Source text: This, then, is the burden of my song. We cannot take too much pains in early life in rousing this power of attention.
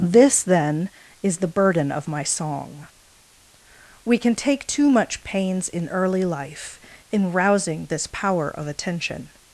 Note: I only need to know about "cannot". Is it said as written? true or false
false